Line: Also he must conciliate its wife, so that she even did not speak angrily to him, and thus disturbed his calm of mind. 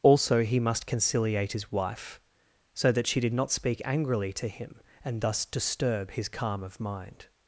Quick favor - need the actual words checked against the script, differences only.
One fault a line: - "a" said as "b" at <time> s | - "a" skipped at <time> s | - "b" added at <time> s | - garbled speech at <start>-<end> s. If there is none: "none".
- "its" said as "his" at 1.5 s
- "even" skipped at 3.2 s
- "disturbed" said as "disturb" at 5.4 s